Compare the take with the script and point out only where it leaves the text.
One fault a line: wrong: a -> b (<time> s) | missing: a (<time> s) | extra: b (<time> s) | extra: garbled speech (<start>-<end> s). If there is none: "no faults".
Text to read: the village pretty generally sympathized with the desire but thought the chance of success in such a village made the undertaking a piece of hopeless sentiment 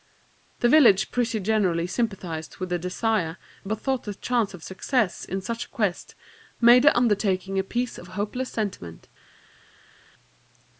wrong: village -> quest (5.7 s)